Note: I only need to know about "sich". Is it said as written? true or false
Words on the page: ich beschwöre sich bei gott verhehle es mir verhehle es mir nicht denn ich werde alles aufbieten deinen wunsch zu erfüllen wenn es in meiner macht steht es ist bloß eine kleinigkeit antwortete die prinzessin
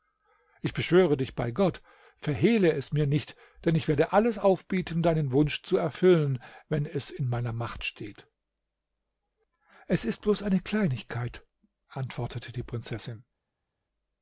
false